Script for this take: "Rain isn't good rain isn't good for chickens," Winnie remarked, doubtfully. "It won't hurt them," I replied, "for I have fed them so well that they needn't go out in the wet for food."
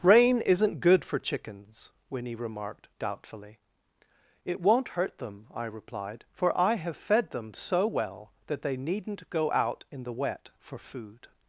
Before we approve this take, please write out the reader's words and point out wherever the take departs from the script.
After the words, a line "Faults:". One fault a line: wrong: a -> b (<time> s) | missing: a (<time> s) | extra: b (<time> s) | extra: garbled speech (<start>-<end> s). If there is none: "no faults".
"Rain isn't good for chickens," Winnie remarked, doubtfully. "It won't hurt them," I replied, "for I have fed them so well that they needn't go out in the wet for food."
Faults:
missing: rain isn't good (1.1 s)